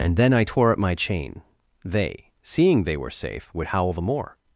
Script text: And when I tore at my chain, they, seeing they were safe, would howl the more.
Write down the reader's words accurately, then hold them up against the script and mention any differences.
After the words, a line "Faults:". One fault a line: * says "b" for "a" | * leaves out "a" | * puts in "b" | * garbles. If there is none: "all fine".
And then I tore at my chain, they, seeing they were safe, would howl the more.
Faults:
* says "then" for "when"